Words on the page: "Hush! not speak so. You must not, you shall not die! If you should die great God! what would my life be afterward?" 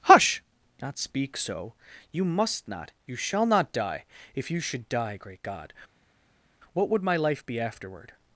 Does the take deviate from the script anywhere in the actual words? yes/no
no